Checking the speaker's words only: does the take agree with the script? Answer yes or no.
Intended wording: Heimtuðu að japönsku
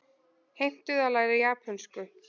no